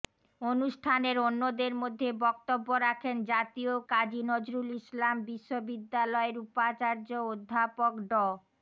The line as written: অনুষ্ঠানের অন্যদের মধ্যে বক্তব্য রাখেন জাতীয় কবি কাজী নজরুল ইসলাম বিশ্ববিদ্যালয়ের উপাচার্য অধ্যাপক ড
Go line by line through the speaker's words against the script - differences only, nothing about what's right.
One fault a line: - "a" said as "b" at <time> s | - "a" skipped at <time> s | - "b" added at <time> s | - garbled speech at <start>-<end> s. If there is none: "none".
- "কবি" skipped at 3.7 s